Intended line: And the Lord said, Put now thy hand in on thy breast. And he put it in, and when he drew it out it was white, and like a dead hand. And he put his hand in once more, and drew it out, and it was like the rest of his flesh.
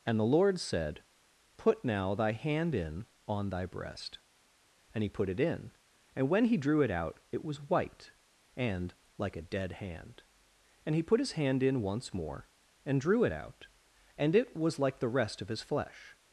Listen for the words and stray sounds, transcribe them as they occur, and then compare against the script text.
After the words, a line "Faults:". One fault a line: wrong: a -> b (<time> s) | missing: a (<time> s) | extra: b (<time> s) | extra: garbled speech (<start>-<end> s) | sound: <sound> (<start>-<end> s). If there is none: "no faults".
And the Lord said, Put now thy hand in on thy breast. And he put it in, and when he drew it out it was white, and like a dead hand. And he put his hand in once more, and drew it out, and it was like the rest of his flesh.
Faults:
no faults